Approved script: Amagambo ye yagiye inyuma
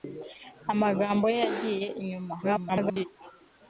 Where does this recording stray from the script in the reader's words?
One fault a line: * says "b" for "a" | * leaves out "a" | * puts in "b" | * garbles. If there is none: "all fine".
* garbles